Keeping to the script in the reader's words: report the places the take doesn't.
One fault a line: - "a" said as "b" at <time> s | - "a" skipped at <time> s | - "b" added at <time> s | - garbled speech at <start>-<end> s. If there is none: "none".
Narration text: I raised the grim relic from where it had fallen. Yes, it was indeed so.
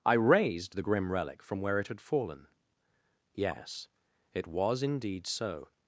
none